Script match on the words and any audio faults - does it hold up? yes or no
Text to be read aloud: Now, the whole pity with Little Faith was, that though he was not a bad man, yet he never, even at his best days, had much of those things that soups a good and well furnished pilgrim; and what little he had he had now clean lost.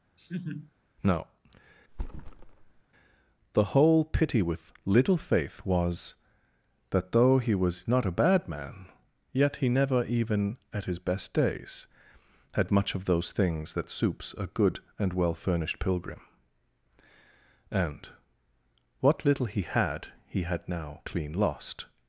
no